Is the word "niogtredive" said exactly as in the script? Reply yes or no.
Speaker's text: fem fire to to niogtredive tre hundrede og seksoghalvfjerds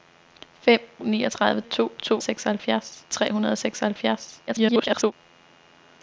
no